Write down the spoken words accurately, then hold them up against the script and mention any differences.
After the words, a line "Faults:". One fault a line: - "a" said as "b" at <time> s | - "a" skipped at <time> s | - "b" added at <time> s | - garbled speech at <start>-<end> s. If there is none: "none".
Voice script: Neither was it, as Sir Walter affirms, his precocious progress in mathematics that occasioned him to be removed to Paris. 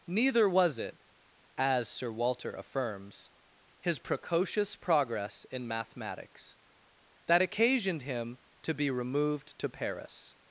Neither was it, as Sir Walter affirms, his precocious progress in mathematics that occasioned him to be removed to Paris.
Faults:
none